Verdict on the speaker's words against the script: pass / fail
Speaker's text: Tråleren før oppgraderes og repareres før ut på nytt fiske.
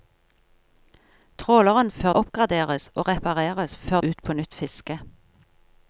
pass